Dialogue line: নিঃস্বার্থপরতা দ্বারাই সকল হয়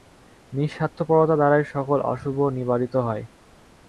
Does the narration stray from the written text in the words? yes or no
yes